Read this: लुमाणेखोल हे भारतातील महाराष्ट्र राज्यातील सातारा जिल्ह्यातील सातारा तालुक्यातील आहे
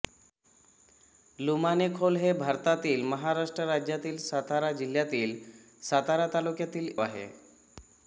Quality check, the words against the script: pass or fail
pass